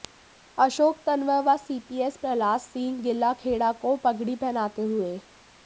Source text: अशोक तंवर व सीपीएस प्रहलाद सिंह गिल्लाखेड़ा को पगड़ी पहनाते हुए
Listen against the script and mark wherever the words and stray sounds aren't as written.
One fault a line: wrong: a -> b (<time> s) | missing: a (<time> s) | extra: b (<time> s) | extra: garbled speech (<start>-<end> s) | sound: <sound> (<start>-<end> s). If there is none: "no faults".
no faults